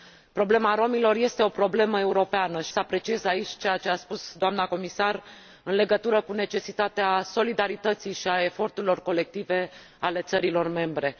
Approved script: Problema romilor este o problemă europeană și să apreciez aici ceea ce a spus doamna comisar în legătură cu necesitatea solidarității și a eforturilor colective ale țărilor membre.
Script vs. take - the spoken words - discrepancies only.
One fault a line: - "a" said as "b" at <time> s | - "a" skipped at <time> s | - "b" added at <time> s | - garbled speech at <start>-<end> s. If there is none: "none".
none